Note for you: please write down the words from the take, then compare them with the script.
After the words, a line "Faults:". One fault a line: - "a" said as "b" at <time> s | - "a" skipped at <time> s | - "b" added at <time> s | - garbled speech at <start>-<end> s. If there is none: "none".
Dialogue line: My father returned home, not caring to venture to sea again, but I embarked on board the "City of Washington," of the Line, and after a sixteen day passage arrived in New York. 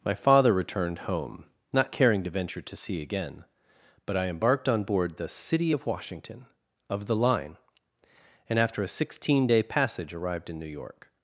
My father returned home, not caring to venture to sea again, but I embarked on board the "City of Washington," of the Line, and after a sixteen day passage arrived in New York.
Faults:
none